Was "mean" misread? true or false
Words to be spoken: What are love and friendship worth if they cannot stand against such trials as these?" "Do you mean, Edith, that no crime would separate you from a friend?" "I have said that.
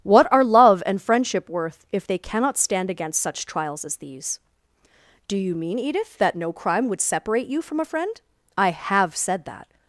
false